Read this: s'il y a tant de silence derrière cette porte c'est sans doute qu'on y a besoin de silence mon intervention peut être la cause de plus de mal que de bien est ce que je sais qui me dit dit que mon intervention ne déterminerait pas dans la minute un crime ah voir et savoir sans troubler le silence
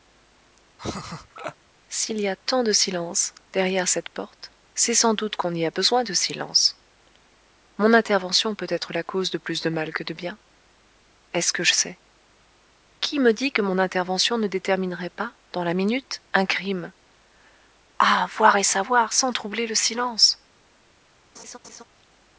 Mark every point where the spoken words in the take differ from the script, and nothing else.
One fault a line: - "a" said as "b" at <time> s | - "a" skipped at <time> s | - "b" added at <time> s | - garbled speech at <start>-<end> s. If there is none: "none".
- "dit" skipped at 13.5 s